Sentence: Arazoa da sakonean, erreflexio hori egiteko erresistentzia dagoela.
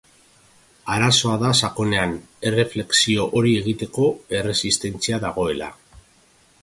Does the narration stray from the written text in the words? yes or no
no